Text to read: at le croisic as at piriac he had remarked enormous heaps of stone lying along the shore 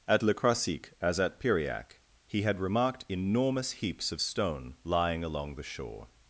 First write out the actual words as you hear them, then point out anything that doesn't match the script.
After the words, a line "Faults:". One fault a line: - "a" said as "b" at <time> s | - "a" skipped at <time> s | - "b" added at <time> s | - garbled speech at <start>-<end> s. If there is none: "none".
at le croisic as at piriac he had remarked enormous heaps of stone lying along the shore
Faults:
none